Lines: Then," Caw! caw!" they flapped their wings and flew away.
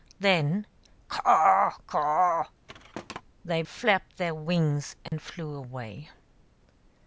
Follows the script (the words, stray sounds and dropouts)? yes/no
no